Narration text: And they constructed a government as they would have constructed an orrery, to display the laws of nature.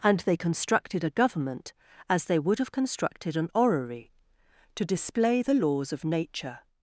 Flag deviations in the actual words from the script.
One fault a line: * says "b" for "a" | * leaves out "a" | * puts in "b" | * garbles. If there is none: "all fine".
all fine